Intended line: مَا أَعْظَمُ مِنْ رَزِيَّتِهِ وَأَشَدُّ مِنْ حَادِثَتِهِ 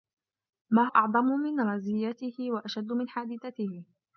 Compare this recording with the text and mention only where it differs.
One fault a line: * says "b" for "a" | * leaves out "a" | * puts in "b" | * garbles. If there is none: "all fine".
all fine